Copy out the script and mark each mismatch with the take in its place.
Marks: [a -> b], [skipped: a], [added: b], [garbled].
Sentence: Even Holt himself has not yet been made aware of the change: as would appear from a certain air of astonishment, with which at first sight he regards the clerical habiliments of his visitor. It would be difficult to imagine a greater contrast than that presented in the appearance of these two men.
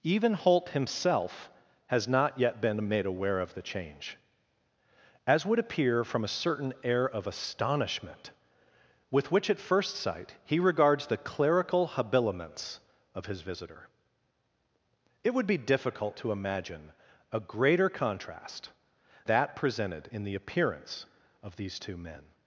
Even Holt himself has not yet been made aware of the change: as would appear from a certain air of astonishment, with which at first sight he regards the clerical habiliments of his visitor. It would be difficult to imagine a greater contrast [skipped: than] that presented in the appearance of these two men.